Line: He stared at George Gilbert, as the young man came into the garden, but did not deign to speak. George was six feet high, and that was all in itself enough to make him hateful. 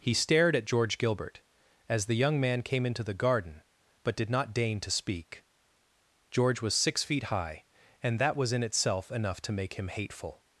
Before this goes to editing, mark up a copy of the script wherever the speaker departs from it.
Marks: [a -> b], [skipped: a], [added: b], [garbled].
He stared at George Gilbert, as the young man came into the garden, but did not deign to speak. George was six feet high, and that was [skipped: all] in itself enough to make him hateful.